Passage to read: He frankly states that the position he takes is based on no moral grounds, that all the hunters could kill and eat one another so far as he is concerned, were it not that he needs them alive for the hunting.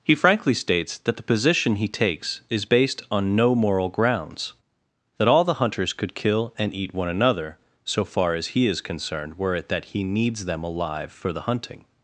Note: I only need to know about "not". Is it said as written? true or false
false